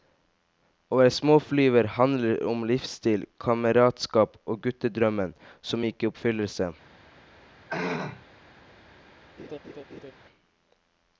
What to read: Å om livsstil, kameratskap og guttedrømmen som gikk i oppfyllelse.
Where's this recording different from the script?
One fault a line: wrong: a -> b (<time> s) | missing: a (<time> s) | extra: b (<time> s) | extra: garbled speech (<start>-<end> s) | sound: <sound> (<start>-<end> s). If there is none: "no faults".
extra: være småflyver handler (1.0 s)
sound: throat clearing (7.7-8.3 s)
sound: laugh (9.4-10.1 s)